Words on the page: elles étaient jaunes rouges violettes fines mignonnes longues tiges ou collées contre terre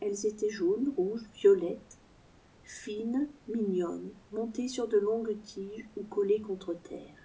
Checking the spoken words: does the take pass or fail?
fail